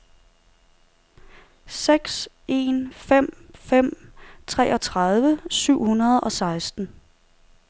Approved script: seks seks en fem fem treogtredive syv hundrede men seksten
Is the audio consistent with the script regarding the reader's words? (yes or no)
no